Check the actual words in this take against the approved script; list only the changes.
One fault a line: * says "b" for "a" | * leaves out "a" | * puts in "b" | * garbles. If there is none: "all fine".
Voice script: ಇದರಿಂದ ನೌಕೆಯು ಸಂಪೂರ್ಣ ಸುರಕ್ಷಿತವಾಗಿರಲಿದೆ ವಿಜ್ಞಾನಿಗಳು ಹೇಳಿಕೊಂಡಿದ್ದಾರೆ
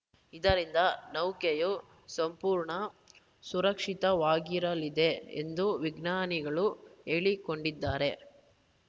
* puts in "ಎಂದು"